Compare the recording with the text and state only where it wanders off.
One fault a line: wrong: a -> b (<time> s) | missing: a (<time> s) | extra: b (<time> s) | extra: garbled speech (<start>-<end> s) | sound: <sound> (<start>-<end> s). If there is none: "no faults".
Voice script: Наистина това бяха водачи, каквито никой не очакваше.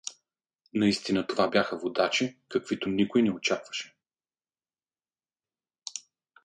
no faults